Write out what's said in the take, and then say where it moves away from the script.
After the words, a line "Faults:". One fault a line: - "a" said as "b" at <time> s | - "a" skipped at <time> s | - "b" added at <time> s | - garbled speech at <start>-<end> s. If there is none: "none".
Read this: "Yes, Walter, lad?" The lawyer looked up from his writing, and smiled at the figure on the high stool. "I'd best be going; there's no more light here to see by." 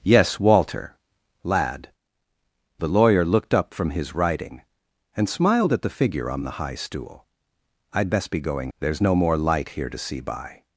"Yes, Walter, lad?" The lawyer looked up from his writing, and smiled at the figure on the high stool. "I'd best be going; there's no more light here to see by."
Faults:
none